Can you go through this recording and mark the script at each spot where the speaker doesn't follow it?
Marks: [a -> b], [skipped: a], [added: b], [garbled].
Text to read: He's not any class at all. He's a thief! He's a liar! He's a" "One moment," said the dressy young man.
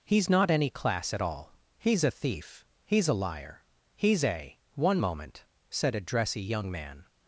He's not any class at all. He's a thief! He's a liar! He's a" "One moment," said [the -> a] dressy young man.